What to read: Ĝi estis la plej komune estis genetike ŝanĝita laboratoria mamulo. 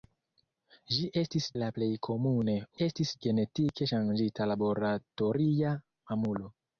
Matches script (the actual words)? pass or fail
pass